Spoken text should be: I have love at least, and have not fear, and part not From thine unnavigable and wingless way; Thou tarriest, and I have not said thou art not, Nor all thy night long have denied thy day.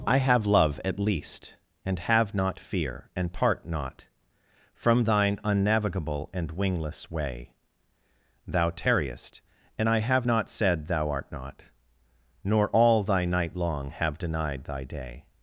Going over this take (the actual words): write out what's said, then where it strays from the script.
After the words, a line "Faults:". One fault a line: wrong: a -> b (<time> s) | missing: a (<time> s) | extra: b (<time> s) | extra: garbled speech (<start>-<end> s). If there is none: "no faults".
I have love at least, and have not fear, and part not From thine unnavigable and wingless way; Thou tarriest, and I have not said thou art not, Nor all thy night long have denied thy day.
Faults:
no faults